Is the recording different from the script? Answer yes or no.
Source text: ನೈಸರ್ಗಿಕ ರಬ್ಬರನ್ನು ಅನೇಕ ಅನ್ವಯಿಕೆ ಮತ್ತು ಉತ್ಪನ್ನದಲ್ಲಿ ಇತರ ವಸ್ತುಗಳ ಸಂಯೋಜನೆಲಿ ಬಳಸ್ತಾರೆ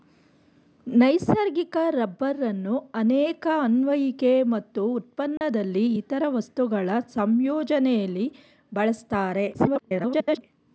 yes